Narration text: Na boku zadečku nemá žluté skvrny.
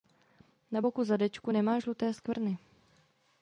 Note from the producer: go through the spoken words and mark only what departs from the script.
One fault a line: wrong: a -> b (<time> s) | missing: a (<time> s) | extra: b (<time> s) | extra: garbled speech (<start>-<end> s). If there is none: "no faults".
no faults